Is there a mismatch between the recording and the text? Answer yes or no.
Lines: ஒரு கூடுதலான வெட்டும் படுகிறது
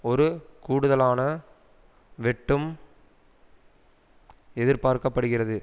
yes